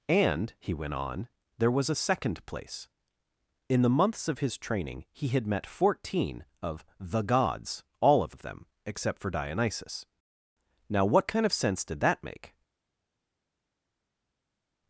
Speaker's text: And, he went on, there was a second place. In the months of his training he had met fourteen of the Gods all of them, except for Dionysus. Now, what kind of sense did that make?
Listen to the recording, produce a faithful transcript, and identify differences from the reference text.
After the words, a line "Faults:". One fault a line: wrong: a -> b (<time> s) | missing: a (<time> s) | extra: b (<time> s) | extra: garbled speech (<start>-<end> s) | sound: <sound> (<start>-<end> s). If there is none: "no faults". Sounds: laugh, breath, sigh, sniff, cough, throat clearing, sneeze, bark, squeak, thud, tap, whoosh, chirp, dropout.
And, he went on, there was a second place. In the months of his training he had met fourteen of the Gods all of of them, except for Dionysus. Now, what kind of sense did that make?
Faults:
extra: of (8.3 s)